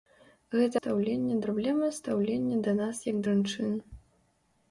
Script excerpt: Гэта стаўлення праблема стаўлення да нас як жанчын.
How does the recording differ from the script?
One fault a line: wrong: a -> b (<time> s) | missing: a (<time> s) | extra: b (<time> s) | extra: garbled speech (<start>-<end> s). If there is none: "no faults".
no faults